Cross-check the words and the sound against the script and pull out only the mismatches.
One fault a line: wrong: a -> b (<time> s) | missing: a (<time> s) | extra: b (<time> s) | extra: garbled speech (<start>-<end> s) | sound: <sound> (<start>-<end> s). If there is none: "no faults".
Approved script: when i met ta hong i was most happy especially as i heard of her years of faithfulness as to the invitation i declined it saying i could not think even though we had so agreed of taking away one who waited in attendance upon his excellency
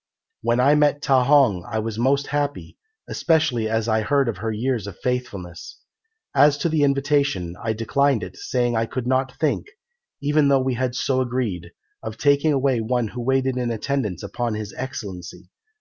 no faults